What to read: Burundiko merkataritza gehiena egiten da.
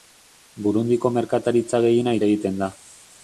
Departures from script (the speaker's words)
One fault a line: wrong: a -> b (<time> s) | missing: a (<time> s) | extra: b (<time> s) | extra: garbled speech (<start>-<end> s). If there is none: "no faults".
no faults